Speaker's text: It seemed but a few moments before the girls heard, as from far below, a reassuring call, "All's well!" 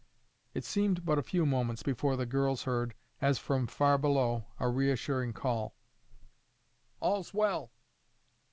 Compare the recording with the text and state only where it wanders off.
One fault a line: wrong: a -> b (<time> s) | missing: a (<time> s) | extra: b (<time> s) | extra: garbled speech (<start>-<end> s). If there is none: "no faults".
no faults